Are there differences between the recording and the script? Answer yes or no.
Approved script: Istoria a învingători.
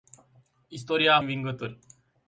no